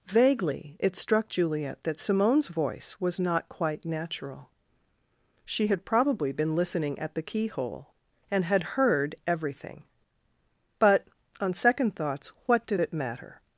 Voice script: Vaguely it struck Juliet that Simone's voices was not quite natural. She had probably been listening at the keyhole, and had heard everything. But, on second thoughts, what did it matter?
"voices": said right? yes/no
no